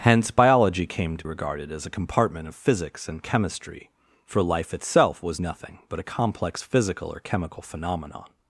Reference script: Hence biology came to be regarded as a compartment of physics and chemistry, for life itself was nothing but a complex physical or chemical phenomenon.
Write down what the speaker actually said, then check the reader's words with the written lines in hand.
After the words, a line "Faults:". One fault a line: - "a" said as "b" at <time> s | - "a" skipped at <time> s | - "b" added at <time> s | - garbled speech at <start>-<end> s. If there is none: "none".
Hence biology came to regarded as a compartment of physics and chemistry, for life itself was nothing but a complex physical or chemical phenomenon.
Faults:
- "be" skipped at 1.2 s